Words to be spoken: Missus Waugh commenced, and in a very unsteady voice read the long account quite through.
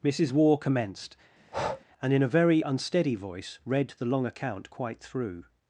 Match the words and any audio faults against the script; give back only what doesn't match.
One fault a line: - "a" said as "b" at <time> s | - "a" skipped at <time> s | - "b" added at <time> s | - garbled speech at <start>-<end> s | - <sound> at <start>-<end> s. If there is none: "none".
- breath at 1.4-1.9 s